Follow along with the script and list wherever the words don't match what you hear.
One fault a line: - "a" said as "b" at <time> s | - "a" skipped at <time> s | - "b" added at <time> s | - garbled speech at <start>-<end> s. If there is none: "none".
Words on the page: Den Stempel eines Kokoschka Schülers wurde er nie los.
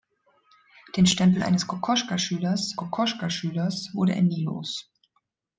- "Kokoschka Schülers" added at 2.8 s